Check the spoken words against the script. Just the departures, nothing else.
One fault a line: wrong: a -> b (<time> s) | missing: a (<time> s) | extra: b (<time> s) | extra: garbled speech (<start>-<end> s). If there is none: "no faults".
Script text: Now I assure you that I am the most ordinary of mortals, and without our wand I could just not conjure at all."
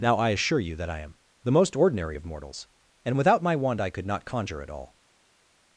wrong: our -> my (3.4 s)
missing: just (4.1 s)